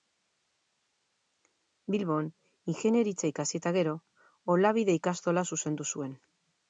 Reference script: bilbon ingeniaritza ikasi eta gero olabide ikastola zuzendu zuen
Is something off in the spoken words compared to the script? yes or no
no